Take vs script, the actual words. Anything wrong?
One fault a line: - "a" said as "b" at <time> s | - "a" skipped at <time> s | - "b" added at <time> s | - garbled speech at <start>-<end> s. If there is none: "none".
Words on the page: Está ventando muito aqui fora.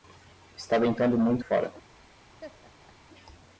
- "aqui" skipped at 1.4 s